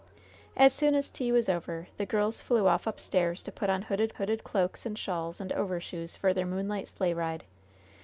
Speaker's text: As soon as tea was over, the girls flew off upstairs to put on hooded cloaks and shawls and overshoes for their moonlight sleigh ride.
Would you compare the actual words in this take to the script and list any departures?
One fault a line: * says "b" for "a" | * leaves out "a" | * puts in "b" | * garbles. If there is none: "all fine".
* puts in "hooded"